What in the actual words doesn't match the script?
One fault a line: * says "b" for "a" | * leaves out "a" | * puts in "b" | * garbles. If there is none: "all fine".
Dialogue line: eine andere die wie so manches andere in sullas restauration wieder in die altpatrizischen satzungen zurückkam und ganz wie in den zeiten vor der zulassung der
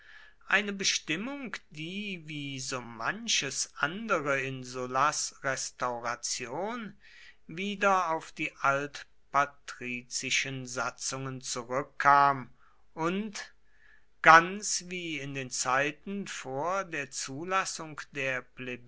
* says "bestimmung" for "andere"
* says "auf" for "in"